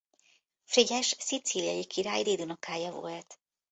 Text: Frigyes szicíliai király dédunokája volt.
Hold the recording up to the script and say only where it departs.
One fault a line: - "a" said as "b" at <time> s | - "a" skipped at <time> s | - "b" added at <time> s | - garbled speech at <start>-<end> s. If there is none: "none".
none